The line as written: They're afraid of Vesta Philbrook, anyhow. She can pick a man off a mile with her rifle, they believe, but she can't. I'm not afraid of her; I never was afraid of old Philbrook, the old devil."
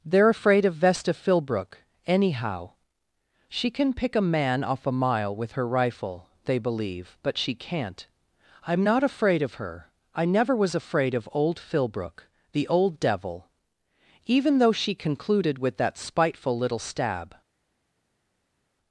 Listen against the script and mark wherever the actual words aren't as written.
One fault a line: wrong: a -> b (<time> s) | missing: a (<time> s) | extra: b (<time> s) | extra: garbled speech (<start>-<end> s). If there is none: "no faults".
extra: Even though she concluded with that spiteful little stab (14.2 s)